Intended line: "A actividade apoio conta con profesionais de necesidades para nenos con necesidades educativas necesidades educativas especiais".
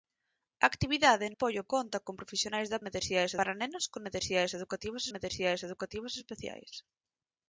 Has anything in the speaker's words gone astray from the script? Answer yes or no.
no